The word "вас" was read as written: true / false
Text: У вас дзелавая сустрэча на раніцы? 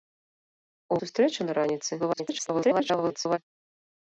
false